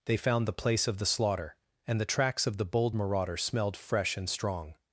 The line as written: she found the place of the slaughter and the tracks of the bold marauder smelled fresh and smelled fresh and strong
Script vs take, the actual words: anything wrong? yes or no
yes